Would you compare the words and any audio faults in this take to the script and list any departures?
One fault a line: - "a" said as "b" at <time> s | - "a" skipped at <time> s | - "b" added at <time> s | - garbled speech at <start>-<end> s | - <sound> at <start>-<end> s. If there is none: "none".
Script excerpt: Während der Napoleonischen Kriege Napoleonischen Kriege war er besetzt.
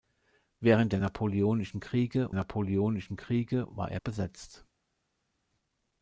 none